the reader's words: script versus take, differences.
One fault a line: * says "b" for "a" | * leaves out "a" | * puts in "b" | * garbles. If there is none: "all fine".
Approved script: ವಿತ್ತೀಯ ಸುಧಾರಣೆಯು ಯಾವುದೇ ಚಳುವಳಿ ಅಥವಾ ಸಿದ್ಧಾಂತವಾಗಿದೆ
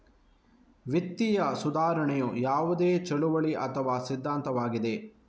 all fine